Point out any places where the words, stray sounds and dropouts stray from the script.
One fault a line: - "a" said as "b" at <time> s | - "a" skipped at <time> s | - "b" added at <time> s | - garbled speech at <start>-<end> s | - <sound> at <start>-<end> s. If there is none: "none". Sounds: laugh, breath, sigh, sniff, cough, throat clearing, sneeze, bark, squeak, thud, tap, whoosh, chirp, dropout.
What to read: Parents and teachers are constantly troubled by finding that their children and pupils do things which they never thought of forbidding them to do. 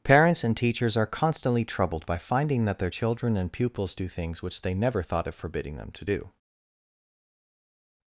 none